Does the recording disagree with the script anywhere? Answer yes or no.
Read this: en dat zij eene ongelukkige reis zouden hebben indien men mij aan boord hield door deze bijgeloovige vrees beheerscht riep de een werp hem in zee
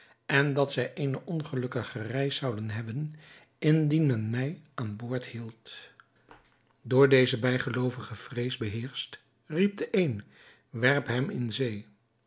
no